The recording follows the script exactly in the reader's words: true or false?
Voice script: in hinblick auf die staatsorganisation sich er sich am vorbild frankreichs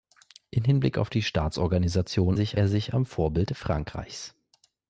true